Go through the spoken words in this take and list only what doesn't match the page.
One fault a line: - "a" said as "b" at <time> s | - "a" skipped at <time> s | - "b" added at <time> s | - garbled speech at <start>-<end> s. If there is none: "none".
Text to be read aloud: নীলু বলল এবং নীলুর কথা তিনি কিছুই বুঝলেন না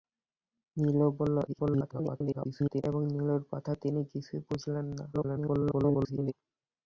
- garbled speech at 1.5-2.8 s
- garbled speech at 5.1-6.3 s